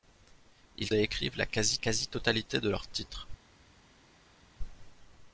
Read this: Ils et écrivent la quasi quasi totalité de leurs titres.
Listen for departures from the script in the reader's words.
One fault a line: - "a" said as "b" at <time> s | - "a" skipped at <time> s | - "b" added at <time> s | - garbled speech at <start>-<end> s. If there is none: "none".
none